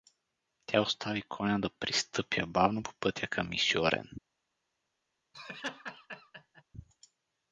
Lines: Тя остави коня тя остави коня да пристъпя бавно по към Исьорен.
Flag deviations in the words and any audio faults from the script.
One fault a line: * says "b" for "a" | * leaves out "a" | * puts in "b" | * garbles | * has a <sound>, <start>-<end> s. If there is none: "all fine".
* leaves out "тя остави коня"
* puts in "пътя"
* has a laugh, 5.3-6.6 s